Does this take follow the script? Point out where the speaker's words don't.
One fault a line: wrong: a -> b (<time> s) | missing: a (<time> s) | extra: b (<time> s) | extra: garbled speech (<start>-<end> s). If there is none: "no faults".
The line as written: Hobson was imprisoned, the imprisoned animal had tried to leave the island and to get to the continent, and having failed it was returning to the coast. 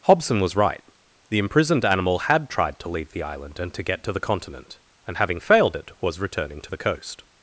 wrong: imprisoned -> right (0.6 s)